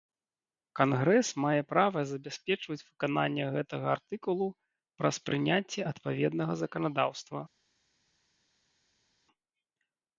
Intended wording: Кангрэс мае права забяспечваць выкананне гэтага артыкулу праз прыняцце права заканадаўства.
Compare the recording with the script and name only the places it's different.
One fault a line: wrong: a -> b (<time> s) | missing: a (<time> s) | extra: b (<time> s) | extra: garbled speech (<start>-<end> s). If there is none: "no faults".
wrong: права -> адпаведнага (5.9 s)